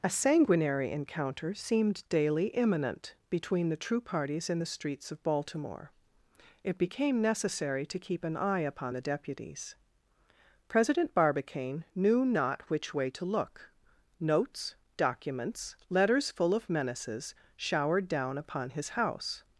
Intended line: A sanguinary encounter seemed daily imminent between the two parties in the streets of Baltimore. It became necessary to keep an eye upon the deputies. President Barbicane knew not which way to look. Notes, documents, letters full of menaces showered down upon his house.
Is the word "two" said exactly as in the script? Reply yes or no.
no